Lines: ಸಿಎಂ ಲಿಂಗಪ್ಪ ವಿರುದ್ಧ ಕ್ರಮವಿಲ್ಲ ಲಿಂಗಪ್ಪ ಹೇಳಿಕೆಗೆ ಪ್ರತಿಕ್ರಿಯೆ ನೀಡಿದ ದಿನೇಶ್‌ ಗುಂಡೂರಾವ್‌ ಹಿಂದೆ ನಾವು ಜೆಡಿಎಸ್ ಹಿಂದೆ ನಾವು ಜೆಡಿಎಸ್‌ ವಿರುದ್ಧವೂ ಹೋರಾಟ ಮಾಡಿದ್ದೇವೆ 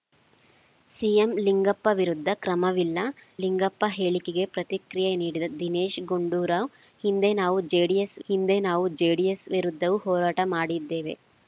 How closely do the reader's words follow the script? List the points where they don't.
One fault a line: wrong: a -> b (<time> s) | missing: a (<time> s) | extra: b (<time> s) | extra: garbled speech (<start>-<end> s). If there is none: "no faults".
no faults